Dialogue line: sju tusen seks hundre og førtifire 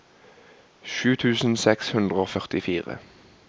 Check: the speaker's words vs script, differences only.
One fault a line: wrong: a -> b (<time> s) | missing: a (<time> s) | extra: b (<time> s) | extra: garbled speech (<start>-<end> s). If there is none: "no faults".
no faults